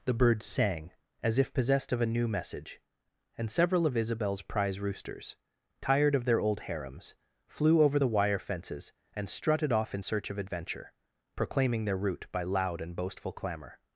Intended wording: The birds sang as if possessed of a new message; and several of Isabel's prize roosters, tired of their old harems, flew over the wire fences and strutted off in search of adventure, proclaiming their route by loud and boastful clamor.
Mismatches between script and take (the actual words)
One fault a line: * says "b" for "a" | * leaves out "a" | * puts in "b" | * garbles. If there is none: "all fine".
all fine